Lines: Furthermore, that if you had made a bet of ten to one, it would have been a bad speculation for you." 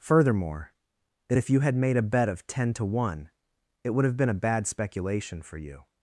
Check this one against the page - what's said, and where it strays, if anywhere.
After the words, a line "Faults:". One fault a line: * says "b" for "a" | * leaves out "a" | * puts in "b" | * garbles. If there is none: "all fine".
Furthermore, that if you had made a bet of ten to one, it would have been a bad speculation for you."
Faults:
all fine